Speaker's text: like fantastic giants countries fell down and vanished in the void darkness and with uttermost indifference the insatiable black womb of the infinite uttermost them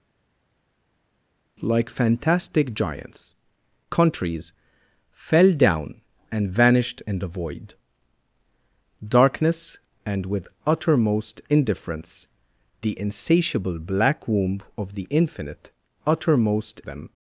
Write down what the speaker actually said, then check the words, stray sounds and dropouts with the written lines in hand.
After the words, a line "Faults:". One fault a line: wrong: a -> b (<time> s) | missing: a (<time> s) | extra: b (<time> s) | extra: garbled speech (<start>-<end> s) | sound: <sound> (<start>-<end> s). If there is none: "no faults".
like fantastic giants countries fell down and vanished in the void darkness and with uttermost indifference the insatiable black womb of the infinite uttermost them
Faults:
no faults